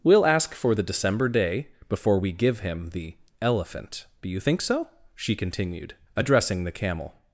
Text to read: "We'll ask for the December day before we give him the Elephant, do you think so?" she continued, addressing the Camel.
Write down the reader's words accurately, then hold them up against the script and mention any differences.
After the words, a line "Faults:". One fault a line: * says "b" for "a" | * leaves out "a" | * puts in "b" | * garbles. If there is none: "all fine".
"We'll ask for the December day before we give him the Elephant, do you think so?" she continued, addressing the Camel.
Faults:
all fine